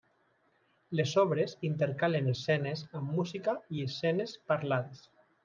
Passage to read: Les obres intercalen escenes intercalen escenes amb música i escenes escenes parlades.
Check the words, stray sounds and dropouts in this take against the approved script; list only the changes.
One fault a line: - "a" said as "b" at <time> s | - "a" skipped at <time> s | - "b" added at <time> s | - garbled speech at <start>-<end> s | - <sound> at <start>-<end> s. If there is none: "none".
- "intercalen escenes" skipped at 2.8 s
- "escenes" skipped at 4.4 s